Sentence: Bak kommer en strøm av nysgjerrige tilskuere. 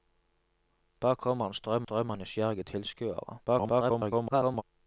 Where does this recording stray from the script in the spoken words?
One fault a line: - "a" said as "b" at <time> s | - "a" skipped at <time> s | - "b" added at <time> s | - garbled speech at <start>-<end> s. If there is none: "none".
- "strøm" added at 1.8 s
- garbled speech at 3.5-4.6 s